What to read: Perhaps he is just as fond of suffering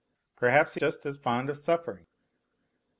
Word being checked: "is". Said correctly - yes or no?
no